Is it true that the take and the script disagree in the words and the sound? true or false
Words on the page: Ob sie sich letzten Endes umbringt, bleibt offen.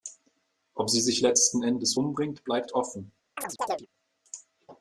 true